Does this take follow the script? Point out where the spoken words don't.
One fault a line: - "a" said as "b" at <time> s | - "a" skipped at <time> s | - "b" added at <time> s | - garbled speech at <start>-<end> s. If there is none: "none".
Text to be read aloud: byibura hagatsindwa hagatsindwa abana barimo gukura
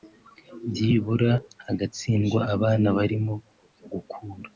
- "hagatsindwa" skipped at 2.4 s